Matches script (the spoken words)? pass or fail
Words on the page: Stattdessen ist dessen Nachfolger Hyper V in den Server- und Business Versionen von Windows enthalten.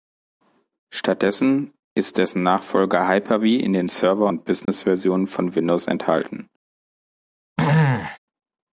pass